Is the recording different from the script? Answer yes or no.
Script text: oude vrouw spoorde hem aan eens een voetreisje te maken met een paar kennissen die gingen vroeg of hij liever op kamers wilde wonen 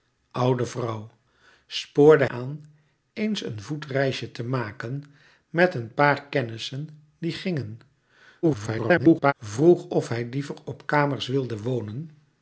yes